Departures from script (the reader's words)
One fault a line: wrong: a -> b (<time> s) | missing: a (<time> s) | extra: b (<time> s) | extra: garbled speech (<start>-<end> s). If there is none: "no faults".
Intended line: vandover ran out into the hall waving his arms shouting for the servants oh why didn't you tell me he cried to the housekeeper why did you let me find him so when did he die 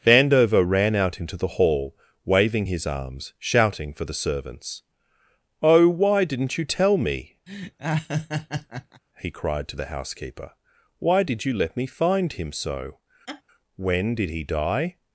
no faults